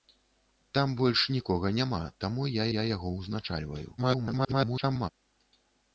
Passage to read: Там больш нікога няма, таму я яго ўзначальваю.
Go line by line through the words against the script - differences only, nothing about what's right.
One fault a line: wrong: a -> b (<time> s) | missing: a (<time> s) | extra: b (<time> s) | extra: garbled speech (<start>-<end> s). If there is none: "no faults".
extra: я (2.7 s)
extra: garbled speech (4.0-5.1 s)